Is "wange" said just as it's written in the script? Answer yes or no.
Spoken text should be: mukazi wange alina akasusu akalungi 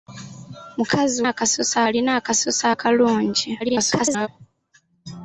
no